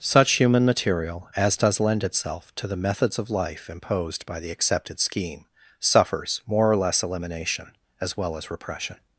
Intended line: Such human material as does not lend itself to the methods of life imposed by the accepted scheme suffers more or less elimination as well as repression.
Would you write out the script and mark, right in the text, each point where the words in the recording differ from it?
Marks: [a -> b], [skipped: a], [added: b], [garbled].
Such human material as does [skipped: not] lend itself to the methods of life imposed by the accepted scheme suffers more or less elimination as well as repression.